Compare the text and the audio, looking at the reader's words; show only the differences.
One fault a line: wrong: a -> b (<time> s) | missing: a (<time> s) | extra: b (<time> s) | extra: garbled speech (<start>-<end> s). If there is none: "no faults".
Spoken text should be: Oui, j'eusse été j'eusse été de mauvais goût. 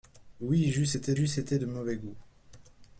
no faults